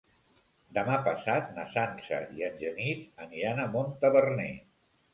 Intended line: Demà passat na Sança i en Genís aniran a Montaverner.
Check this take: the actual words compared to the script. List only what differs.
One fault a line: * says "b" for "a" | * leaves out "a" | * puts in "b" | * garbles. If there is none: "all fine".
all fine